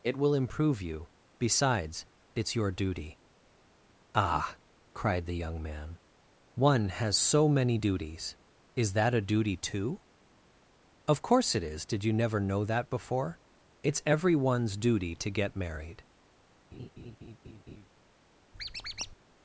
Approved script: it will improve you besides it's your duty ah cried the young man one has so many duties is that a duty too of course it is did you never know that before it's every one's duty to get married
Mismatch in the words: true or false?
false